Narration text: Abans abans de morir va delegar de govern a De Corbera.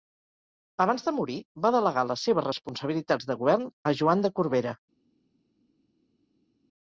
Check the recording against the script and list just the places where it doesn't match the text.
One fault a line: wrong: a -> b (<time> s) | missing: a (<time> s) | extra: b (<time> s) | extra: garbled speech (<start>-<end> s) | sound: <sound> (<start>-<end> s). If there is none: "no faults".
missing: abans (1.1 s)
extra: les seves responsabilitats (2.1 s)
extra: Joan (4.0 s)